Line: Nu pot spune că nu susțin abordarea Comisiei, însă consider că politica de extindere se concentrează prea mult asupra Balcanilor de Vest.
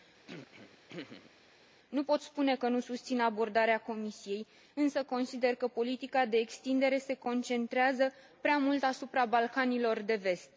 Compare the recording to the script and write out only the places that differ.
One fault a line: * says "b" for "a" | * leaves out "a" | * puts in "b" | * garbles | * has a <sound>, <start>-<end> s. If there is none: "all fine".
* has a throat clearing, 0.3-1.3 s